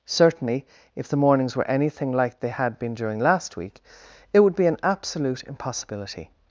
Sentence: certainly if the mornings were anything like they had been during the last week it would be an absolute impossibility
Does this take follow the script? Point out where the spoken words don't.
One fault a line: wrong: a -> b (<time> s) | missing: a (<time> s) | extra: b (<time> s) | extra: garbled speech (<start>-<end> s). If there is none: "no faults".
missing: the (3.2 s)